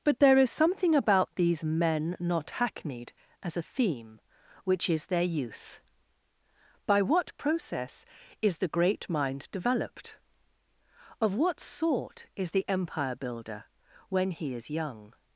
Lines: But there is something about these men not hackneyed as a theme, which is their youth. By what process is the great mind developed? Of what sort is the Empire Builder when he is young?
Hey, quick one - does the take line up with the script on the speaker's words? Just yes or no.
yes